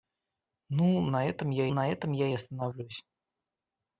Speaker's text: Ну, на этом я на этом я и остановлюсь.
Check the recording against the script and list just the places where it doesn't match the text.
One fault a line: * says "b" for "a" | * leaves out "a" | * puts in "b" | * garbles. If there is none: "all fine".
all fine